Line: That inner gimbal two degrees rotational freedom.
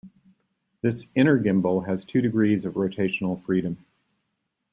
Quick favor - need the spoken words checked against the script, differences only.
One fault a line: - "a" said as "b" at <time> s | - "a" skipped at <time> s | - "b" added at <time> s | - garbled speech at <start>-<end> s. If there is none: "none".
- "That" said as "This" at 0.8 s
- "has" added at 1.9 s
- "of" added at 2.6 s